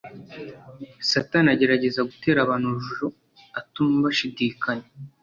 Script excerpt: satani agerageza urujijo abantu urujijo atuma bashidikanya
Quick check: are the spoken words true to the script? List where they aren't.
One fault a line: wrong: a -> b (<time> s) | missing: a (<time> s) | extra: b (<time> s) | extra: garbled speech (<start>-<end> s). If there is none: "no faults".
wrong: urujijo -> gutera (2.1 s)